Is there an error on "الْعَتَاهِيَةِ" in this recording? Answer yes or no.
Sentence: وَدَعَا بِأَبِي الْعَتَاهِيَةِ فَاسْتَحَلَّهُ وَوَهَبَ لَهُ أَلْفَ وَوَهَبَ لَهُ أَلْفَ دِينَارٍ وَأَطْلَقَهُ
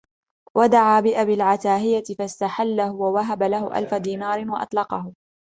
no